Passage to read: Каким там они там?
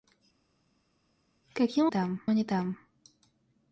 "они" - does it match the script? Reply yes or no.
yes